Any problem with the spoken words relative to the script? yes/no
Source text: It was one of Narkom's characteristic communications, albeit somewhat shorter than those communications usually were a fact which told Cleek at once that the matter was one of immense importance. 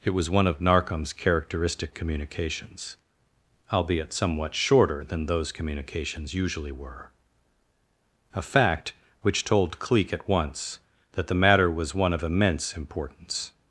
no